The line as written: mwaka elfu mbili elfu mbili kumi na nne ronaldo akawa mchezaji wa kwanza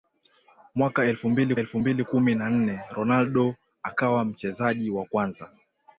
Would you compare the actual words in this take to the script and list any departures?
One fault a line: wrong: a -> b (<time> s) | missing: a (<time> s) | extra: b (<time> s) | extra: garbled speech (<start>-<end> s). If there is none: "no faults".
no faults